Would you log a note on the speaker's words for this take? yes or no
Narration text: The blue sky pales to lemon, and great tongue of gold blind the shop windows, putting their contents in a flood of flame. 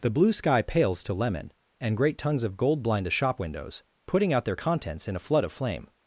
yes